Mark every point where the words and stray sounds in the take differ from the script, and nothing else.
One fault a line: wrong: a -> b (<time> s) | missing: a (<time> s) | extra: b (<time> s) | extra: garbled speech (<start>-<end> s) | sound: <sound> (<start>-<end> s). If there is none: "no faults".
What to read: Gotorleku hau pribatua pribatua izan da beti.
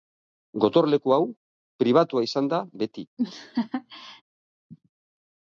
missing: pribatua (2.2 s)
sound: laugh (3.2-4.2 s)